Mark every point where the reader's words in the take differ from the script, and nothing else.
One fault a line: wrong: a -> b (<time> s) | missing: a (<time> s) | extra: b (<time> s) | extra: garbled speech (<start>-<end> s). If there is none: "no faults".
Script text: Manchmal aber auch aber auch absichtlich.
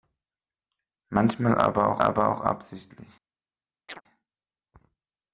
no faults